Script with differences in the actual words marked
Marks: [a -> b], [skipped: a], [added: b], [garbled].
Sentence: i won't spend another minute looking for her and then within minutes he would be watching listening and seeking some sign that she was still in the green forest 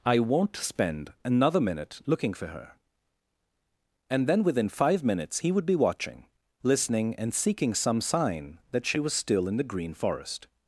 i won't spend another minute looking for her and then within [added: five] minutes he would be watching listening and seeking some sign that she was still in the green forest